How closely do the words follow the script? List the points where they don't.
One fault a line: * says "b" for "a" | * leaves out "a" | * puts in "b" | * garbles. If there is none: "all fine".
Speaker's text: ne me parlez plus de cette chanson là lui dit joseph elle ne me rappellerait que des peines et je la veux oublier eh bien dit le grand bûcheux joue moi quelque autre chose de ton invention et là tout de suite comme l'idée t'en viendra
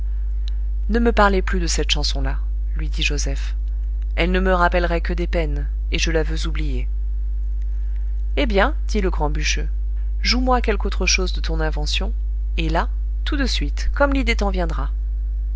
all fine